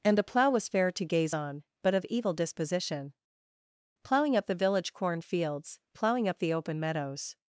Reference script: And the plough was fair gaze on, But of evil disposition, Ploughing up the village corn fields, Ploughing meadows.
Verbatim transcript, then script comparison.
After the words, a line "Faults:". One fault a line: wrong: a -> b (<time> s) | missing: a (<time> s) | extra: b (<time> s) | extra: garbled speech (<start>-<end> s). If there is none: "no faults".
And the plough was fair to gaze on, But of evil disposition, Ploughing up the village corn fields, Ploughing up the open meadows.
Faults:
extra: to (0.9 s)
extra: up the open (6.3 s)